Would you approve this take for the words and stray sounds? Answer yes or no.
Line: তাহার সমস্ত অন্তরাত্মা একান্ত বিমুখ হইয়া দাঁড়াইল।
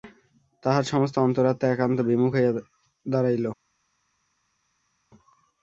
yes